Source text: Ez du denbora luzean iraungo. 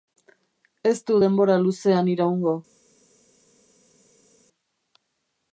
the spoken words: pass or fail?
pass